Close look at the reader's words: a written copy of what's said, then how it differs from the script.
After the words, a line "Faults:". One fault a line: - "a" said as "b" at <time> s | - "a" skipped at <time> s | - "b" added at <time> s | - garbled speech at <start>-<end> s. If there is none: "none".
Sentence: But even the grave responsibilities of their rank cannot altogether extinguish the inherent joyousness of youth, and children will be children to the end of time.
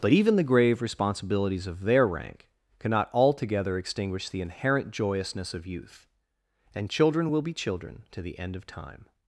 But even the grave responsibilities of their rank cannot altogether extinguish the inherent joyousness of youth, and children will be children to the end of time.
Faults:
none